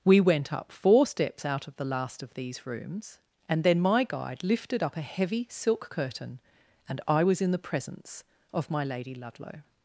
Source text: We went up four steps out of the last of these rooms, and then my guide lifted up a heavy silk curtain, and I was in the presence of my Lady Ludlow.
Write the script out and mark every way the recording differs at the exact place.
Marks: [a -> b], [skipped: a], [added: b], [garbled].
We went up four steps out of the last of these rooms, and then my guide lifted up a heavy silk curtain, and I was in the presence of my Lady Ludlow.